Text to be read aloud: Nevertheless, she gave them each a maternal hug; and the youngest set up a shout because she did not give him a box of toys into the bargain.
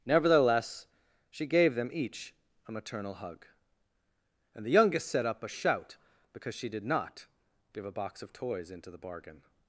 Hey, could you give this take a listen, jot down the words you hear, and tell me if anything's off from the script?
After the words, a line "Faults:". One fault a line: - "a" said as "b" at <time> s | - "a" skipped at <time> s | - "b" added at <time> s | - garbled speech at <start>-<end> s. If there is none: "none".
Nevertheless, she gave them each a maternal hug; and the youngest set up a shout because she did not give a box of toys into the bargain.
Faults:
- "him" skipped at 7.9 s